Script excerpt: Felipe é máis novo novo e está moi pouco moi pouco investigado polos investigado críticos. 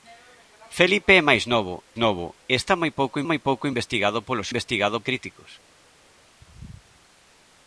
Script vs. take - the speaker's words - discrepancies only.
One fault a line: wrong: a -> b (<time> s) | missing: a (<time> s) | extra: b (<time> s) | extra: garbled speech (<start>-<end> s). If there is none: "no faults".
no faults